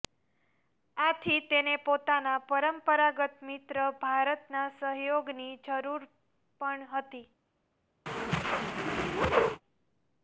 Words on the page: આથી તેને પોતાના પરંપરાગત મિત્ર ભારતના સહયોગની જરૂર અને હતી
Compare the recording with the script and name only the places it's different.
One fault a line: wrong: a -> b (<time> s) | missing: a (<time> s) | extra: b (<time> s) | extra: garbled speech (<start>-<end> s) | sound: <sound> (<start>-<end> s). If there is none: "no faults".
wrong: અને -> પણ (6.6 s)
sound: whoosh (8.1-9.6 s)